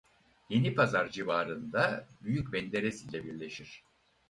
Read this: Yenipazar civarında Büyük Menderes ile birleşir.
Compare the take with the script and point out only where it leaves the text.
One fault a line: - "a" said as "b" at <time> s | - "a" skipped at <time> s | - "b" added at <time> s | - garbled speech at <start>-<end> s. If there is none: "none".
none